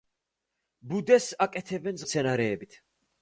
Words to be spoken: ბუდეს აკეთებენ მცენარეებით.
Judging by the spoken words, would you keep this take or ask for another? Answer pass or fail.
pass